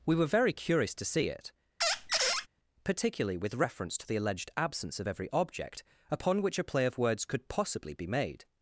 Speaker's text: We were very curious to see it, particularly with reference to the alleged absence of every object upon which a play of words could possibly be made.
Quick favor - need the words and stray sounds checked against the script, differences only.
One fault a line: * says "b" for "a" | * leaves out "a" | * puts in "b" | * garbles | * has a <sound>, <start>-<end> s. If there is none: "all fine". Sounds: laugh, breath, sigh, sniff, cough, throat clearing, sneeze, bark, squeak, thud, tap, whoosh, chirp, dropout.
* has a squeak, 1.8-2.5 s